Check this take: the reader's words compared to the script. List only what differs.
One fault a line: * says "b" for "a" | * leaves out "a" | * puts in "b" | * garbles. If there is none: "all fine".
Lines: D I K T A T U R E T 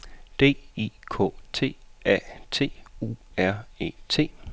all fine